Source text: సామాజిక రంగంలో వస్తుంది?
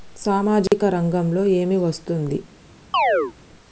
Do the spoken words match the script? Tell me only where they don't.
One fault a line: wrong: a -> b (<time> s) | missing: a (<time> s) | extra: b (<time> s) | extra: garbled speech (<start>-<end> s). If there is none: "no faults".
extra: ఏమి (1.4 s)